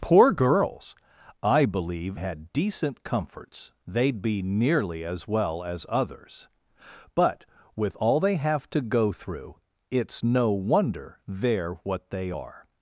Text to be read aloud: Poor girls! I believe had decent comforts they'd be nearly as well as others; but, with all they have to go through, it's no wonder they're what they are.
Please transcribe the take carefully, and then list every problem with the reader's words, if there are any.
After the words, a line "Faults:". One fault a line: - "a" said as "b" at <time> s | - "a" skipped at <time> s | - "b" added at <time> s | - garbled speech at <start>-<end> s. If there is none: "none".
Poor girls! I believe had decent comforts they'd be nearly as well as others; but, with all they have to go through, it's no wonder they're what they are.
Faults:
none